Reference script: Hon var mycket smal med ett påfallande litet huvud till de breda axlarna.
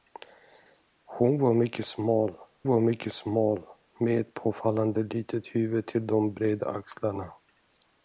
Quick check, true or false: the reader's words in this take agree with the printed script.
false